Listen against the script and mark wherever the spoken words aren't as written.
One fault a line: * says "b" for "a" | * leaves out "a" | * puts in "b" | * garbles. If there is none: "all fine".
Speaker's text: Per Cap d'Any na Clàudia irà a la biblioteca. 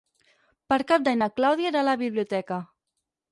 all fine